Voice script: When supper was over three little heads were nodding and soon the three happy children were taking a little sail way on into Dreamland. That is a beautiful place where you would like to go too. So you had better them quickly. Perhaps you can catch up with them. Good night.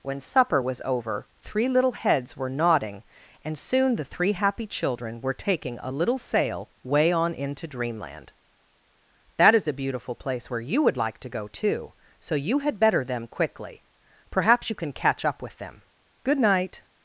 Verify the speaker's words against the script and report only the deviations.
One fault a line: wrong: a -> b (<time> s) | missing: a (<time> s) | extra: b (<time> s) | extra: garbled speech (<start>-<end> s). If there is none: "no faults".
no faults